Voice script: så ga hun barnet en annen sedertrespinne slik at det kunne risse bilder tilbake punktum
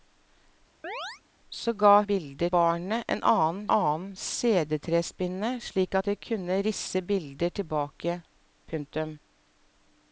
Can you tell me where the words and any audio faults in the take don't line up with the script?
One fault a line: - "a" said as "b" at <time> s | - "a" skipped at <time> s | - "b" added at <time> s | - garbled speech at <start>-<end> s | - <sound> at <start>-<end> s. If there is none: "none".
- chirp at 0.8-1.2 s
- "hun" said as "bilder" at 2.0 s
- "annen" added at 3.8 s